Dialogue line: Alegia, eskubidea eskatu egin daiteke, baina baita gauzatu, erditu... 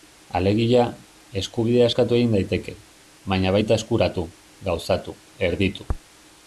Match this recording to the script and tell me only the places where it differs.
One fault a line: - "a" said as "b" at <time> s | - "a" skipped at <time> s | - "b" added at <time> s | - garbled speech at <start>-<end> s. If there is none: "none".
- "eskuratu" added at 3.8 s